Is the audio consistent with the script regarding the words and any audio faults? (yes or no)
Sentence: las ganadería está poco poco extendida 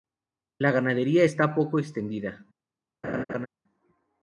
no